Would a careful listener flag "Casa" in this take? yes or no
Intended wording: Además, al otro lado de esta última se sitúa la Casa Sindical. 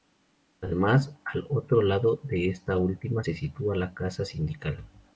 no